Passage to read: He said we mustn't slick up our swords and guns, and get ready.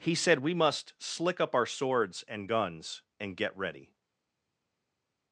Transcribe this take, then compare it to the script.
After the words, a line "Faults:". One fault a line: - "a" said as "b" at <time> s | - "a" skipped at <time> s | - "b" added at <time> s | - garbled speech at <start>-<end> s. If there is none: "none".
He said we must slick up our swords and guns, and get ready.
Faults:
- "mustn't" said as "must" at 0.6 s